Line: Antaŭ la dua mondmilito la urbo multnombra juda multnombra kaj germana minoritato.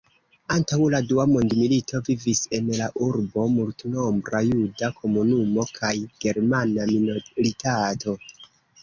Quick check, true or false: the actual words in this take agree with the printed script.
false